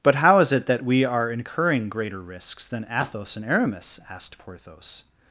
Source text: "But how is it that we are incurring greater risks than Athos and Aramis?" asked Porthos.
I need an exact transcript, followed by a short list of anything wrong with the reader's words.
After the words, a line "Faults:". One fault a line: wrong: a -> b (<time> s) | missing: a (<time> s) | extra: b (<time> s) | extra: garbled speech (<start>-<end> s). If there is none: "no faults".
"But how is it that we are incurring greater risks than Athos and Aramis?" asked Porthos.
Faults:
no faults